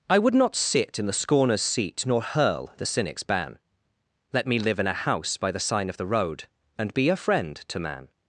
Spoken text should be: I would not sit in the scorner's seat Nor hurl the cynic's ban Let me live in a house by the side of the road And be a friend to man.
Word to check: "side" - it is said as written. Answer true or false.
false